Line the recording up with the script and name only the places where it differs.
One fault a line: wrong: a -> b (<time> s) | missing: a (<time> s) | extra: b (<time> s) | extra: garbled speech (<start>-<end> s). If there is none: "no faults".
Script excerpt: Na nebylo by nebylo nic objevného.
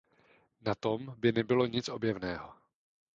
wrong: nebylo -> tom (0.8 s)